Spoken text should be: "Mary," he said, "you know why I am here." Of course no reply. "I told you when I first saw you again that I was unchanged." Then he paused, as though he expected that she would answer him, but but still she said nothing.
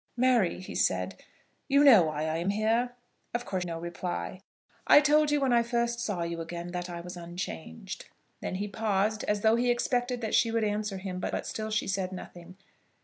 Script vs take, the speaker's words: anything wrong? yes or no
no